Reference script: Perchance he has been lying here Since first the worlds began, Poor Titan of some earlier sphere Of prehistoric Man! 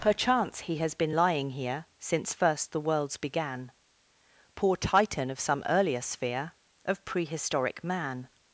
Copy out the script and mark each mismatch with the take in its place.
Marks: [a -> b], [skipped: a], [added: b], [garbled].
Perchance he has been lying here Since first the worlds began, Poor Titan of some earlier sphere Of prehistoric Man!